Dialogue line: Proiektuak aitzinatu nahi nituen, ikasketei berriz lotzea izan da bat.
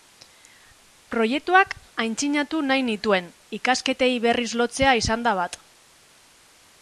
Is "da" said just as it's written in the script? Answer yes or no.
yes